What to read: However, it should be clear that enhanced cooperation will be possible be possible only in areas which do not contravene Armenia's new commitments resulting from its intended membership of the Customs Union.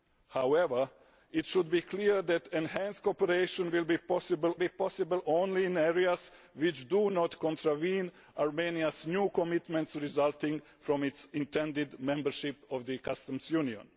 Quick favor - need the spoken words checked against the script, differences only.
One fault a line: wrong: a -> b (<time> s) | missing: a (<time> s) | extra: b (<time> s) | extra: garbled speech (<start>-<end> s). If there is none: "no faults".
no faults